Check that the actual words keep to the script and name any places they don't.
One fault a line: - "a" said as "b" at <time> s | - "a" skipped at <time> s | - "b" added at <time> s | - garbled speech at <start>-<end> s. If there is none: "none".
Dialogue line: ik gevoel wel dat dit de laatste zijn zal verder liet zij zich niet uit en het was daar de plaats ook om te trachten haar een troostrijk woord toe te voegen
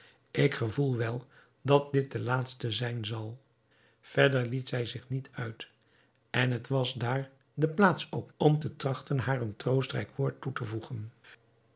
none